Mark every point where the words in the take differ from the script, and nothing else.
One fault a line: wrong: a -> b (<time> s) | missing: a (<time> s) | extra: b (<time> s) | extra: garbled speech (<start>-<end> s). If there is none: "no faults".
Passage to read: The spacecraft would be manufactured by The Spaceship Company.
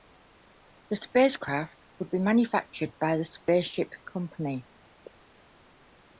no faults